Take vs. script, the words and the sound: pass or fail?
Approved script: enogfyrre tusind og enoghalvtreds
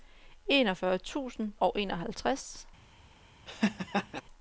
fail